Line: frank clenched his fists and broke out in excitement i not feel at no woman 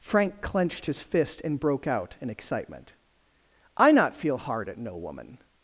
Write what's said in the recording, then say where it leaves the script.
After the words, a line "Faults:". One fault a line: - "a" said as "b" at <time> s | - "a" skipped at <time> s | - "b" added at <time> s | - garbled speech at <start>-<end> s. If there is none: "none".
frank clenched his fist and broke out in excitement i not feel hard at no woman
Faults:
- "fists" said as "fist" at 1.0 s
- "hard" added at 4.4 s